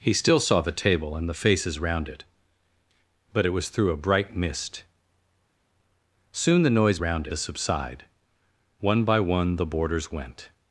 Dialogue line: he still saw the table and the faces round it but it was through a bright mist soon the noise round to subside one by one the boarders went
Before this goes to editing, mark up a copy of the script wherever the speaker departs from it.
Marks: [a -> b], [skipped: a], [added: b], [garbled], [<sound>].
he still saw the table and the faces round it but it was through a bright mist soon the noise round to subside one by one the boarders went